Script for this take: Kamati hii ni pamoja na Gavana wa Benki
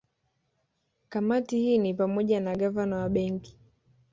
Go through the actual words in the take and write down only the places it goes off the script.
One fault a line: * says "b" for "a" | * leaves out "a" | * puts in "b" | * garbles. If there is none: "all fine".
all fine